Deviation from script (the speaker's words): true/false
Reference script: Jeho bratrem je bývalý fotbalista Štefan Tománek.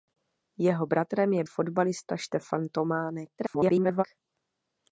true